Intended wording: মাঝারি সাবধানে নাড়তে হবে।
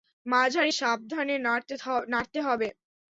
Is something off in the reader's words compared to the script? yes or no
no